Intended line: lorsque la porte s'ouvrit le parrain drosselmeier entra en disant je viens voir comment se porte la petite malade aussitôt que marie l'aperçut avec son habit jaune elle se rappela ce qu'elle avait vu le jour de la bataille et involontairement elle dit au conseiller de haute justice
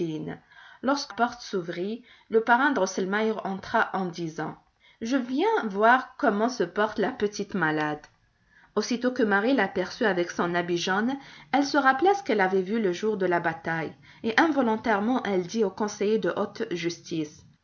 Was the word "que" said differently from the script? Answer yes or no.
no